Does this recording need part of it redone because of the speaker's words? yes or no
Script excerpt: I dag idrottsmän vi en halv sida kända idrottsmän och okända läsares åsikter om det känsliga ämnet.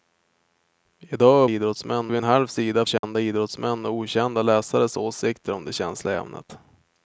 no